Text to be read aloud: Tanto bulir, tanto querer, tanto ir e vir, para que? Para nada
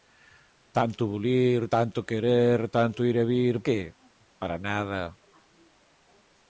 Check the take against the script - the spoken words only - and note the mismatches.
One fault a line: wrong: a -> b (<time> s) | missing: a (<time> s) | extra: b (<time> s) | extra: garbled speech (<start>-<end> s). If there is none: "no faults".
missing: para (3.6 s)